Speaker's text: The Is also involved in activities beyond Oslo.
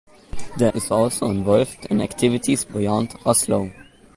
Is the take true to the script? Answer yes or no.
yes